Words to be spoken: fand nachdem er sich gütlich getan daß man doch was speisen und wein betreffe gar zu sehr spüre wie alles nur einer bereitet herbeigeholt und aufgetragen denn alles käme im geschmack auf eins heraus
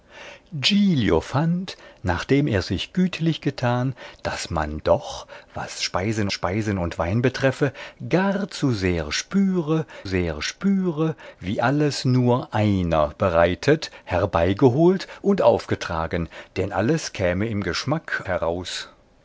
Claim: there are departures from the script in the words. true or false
true